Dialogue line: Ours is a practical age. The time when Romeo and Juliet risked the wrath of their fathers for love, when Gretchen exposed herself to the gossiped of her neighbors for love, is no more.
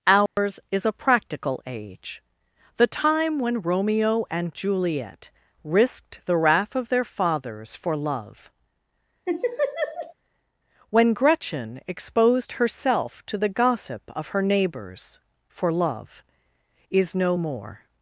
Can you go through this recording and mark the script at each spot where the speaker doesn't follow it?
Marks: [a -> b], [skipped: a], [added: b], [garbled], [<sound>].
Ours [dropout] is a practical age. The time when Romeo and Juliet risked the wrath of their fathers for love, [laugh] when Gretchen exposed herself to the [gossiped -> gossip] of her neighbors for love, is no more.